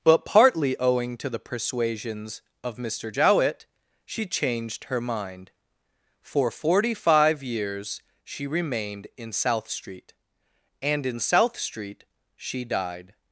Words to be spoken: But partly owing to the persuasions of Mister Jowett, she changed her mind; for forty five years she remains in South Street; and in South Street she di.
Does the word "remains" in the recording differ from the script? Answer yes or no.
yes